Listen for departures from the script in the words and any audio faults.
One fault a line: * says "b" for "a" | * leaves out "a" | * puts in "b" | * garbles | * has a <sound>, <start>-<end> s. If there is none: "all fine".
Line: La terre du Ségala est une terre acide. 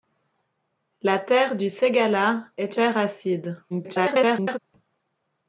* leaves out "une"
* garbles